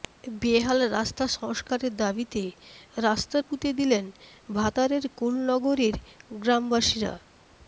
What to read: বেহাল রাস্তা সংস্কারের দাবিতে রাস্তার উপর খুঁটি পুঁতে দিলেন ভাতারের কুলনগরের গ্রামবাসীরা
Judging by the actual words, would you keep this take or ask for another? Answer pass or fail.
fail